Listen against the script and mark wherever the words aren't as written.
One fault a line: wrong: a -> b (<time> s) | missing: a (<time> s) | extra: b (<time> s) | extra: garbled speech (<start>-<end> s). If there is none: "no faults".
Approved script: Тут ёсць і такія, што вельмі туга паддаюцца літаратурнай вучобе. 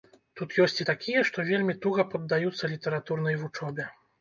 no faults